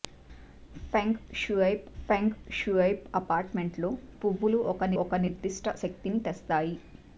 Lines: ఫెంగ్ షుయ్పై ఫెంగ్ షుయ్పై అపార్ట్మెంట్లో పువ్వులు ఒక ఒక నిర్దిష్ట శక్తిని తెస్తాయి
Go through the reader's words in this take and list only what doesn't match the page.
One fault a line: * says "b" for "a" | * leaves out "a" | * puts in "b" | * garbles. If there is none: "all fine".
all fine